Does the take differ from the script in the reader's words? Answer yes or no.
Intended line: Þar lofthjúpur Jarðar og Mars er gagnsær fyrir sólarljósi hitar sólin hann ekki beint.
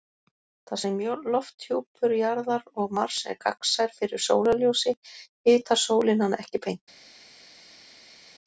yes